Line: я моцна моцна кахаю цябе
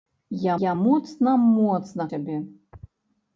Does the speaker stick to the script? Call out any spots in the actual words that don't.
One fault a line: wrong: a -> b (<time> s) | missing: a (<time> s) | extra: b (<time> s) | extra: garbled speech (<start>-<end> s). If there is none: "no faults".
extra: я (0.6 s)
missing: кахаю (2.1 s)